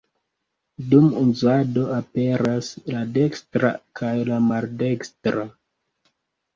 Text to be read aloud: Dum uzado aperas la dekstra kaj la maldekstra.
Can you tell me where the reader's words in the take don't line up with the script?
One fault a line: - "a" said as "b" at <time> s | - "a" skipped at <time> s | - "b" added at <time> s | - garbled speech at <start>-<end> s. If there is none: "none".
none